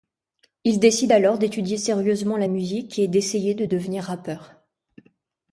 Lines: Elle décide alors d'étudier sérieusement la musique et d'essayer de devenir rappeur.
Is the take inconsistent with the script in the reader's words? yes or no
yes